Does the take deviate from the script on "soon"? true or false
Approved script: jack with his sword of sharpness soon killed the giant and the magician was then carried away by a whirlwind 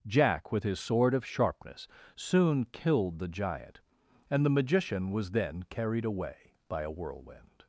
false